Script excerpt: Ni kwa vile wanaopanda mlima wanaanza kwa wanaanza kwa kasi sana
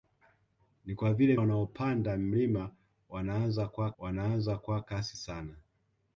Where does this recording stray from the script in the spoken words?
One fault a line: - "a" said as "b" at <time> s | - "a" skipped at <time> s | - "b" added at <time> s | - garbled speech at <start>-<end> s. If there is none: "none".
none